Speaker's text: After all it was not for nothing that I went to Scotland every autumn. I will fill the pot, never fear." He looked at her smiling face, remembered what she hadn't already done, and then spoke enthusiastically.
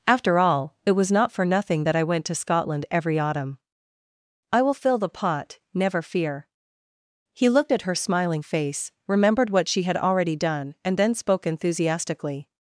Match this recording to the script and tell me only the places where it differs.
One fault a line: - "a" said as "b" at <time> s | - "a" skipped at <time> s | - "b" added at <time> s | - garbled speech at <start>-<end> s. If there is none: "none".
- "hadn't" said as "had" at 9.8 s